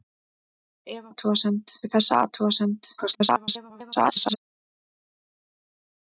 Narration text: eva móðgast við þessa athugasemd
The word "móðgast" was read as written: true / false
false